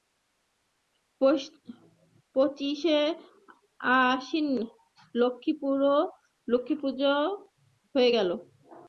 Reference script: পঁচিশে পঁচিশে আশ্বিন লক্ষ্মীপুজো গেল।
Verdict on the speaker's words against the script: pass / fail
fail